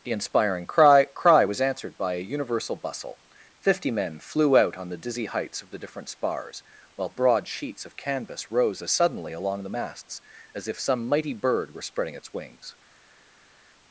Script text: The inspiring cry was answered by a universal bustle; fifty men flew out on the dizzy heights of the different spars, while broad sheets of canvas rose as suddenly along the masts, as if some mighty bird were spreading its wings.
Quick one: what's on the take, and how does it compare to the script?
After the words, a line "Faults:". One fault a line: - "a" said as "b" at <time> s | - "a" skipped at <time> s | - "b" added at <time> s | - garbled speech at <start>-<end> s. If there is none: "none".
The inspiring cry cry was answered by a universal bustle; fifty men flew out on the dizzy heights of the different spars, while broad sheets of canvas rose as suddenly along the masts, as if some mighty bird were spreading its wings.
Faults:
- "cry" added at 1.1 s